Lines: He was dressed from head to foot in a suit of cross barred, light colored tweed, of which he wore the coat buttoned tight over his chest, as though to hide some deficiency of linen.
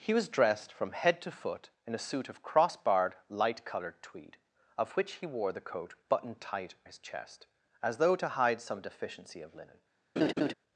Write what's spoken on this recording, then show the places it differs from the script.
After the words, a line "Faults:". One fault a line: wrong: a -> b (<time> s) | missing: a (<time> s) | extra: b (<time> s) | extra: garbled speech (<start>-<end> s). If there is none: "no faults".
He was dressed from head to foot in a suit of cross barred, light colored tweed, of which he wore the coat buttoned tight his chest, as though to hide some deficiency of linen.
Faults:
missing: over (6.7 s)